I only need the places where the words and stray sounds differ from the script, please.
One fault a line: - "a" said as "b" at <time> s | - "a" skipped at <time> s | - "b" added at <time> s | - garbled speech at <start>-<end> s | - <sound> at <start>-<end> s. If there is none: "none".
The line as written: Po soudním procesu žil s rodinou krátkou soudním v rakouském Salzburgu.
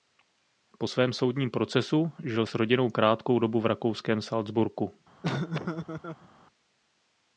- "svém" added at 0.9 s
- "soudním" said as "dobu" at 3.4 s
- laugh at 5.2-6.3 s